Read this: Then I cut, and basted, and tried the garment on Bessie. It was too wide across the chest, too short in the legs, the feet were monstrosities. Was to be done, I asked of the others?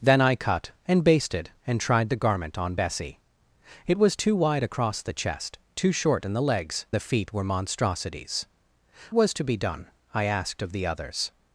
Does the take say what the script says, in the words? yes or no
yes